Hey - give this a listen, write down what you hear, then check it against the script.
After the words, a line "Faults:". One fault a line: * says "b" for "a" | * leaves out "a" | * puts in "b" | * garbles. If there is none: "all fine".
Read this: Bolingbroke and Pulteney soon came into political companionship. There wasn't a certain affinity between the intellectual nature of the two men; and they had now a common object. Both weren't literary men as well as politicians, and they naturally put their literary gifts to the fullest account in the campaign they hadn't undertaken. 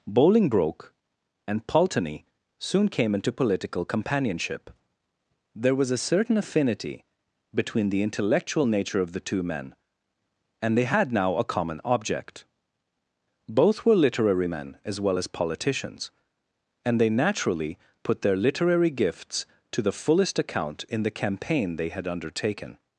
Bolingbroke and Pulteney soon came into political companionship. There was a certain affinity between the intellectual nature of the two men; and they had now a common object. Both were literary men as well as politicians, and they naturally put their literary gifts to the fullest account in the campaign they had undertaken.
Faults:
* says "was" for "wasn't"
* says "were" for "weren't"
* says "had" for "hadn't"